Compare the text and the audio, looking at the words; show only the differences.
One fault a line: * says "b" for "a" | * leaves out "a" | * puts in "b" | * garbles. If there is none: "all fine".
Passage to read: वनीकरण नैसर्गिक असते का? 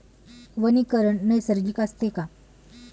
all fine